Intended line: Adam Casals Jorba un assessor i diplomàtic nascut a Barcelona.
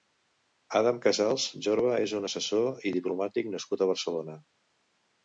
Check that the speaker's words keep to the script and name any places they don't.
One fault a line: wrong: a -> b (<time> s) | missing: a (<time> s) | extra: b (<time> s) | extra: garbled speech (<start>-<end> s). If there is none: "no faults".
extra: és (2.0 s)